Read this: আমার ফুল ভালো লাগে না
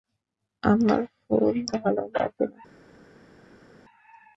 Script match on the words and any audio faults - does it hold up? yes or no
yes